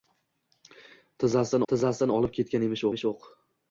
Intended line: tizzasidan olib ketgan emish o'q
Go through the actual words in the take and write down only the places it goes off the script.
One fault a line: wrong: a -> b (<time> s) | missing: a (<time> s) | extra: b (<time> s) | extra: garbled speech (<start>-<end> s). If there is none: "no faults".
extra: tizzasidan (1.7 s)
extra: emish (2.9 s)